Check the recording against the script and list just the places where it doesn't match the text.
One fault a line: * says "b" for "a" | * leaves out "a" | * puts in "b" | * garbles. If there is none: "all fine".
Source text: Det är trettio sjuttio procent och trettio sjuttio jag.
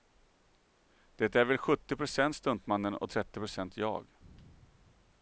* says "väl" for "trettio"
* puts in "stuntmannen"
* says "procent" for "sjuttio"